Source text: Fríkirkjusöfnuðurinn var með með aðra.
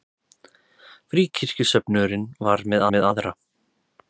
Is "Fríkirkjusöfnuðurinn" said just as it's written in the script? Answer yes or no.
yes